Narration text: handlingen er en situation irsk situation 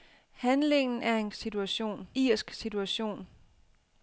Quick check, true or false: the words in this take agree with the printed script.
true